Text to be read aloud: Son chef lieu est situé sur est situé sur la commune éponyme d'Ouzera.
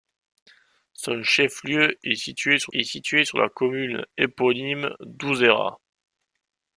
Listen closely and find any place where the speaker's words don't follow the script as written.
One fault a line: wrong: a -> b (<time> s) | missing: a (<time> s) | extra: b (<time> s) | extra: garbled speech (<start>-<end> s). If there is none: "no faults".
no faults